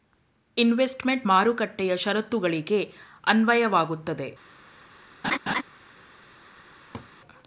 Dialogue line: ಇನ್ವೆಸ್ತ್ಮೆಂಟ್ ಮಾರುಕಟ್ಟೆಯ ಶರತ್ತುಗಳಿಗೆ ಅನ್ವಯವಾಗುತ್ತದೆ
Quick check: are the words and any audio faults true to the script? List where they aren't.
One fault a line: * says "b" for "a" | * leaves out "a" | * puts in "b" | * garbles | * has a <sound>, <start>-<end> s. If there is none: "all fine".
* has a laugh, 5.2-5.6 s
* has a laugh, 6.9-7.1 s